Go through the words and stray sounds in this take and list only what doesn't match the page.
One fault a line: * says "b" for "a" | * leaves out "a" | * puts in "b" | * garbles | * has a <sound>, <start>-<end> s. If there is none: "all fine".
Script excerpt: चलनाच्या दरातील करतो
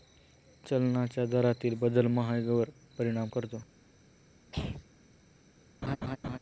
* puts in "बदल महागाईवर परिणाम"
* has a throat clearing, 4.5-4.9 s
* has a laugh, 5.8-6.4 s